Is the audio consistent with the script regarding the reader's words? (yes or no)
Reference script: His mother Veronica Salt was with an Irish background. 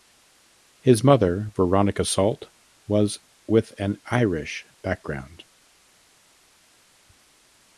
yes